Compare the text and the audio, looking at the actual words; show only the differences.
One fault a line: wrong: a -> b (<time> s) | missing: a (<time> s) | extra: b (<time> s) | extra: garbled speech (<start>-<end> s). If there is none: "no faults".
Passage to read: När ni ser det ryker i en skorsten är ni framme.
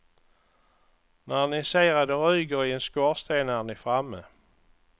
extra: att (1.9 s)